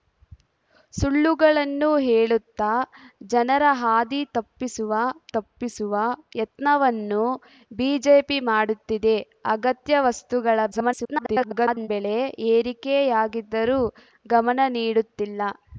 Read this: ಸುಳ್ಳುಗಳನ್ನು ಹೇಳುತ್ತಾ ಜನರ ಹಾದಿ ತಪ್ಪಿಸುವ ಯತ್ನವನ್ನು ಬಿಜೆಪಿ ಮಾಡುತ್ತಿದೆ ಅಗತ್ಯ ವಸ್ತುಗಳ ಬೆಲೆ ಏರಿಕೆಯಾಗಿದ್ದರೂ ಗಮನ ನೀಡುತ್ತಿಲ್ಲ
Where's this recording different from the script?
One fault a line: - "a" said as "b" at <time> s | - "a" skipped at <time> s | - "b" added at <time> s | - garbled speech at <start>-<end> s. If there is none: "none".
- "ತಪ್ಪಿಸುವ" added at 5.3 s
- garbled speech at 10.7-11.9 s